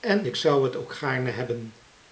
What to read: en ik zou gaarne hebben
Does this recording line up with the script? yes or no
no